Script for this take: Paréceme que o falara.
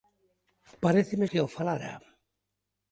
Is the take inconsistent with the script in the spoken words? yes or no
no